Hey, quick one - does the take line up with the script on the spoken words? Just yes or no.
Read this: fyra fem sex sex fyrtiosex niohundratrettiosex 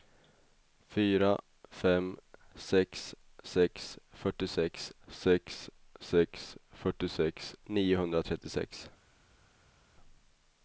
no